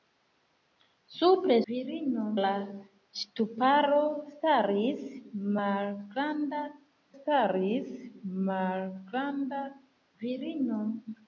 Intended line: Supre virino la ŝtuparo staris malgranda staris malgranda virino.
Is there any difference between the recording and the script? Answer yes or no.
no